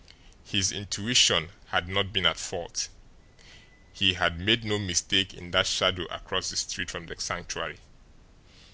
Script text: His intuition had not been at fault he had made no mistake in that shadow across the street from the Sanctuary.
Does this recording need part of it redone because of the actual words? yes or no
no